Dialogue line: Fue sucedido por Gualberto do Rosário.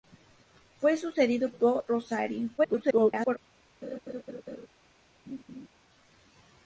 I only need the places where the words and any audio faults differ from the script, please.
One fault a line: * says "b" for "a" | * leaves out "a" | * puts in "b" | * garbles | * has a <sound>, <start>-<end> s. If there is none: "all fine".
* leaves out "por Gualberto"
* garbles
* has a laugh, 3.8-4.7 s
* has a laugh, 5.3-5.7 s